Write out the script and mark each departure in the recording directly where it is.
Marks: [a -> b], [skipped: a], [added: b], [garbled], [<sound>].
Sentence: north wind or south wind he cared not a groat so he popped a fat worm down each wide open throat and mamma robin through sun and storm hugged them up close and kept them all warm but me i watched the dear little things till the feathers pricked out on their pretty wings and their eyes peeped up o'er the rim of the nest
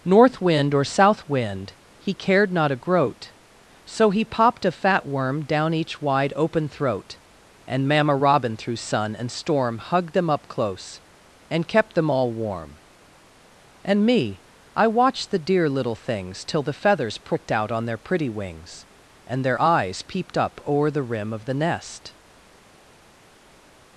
north wind or south wind he cared not a groat so he popped a fat worm down each wide open throat and mamma robin through sun and storm hugged them up close and kept them all warm [but -> and] me i watched the dear little things till the feathers pricked out on their pretty wings and their eyes peeped up o'er the rim of the nest